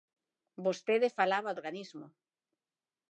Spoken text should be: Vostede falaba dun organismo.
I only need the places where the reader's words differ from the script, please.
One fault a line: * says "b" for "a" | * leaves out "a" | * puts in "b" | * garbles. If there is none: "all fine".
* leaves out "dun"